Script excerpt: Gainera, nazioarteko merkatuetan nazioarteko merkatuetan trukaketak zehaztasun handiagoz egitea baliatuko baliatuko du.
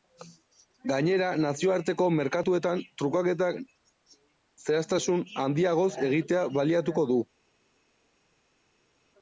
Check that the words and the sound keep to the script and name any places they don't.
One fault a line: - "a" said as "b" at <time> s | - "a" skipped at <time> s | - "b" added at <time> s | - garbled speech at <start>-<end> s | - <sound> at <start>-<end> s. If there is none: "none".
- "nazioarteko merkatuetan" skipped at 2.8 s
- "baliatuko" skipped at 7.0 s